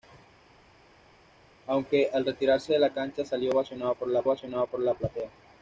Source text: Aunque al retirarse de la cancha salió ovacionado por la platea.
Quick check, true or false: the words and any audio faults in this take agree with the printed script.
false